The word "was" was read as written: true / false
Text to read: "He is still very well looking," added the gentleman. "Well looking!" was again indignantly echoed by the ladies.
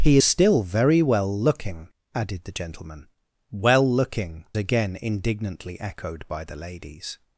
false